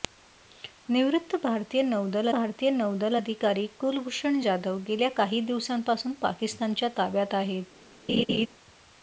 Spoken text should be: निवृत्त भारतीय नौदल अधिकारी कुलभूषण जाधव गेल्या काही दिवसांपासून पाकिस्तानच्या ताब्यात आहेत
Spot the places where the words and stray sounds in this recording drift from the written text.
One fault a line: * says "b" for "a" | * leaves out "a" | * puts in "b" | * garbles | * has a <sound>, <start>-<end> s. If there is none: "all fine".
* puts in "भारतीय नौदल"
* has a laugh, 8.1-8.5 s